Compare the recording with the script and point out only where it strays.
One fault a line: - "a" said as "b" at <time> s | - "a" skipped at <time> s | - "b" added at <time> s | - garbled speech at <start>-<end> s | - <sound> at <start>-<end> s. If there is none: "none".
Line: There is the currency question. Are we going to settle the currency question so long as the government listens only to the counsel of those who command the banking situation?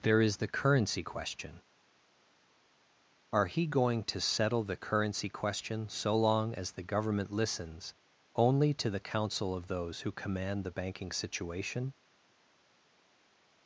- "we" said as "he" at 3.5 s